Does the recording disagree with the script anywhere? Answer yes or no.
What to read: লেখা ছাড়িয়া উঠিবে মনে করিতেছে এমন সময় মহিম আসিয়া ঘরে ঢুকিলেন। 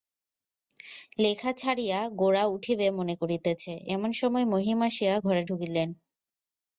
yes